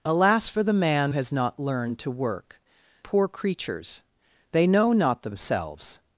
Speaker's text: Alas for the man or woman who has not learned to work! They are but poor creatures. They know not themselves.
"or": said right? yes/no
no